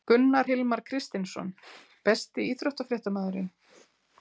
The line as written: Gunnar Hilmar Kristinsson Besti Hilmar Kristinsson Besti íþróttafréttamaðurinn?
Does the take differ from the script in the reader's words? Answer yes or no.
yes